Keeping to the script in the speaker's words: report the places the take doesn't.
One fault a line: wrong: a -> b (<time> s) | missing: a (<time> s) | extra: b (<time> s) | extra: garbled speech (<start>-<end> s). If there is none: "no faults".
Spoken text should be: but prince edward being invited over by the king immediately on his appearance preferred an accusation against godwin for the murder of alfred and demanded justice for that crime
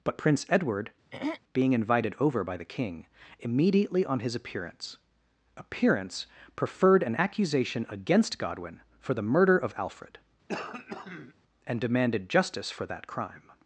extra: appearance (5.5 s)